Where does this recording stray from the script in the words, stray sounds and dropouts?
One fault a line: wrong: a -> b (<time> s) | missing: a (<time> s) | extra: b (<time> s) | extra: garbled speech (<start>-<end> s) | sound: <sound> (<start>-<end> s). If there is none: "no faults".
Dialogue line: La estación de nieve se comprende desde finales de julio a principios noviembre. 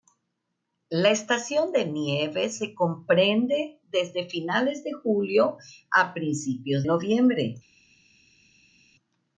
no faults